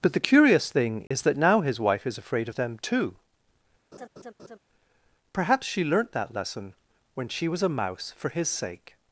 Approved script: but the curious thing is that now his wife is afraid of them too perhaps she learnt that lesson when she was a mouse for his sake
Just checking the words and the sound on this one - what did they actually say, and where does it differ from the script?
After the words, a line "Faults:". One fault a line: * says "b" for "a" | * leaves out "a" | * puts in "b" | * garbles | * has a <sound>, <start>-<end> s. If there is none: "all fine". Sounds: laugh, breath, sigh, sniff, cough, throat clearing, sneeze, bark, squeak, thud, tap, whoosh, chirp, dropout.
but the curious thing is that now his wife is afraid of them too perhaps she learnt that lesson when she was a mouse for his sake
Faults:
* has a dropout, 1.1-1.1 s
* has a laugh, 3.9-4.6 s